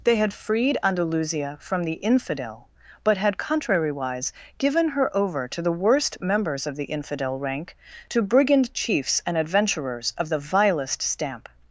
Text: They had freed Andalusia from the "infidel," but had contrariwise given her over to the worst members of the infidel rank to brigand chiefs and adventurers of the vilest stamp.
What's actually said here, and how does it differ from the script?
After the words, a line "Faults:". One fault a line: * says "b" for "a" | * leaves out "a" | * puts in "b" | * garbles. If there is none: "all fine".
They had freed Andalusia from the "infidel," but had contrariwise given her over to the worst members of the infidel rank to brigand chiefs and adventurers of the vilest stamp.
Faults:
all fine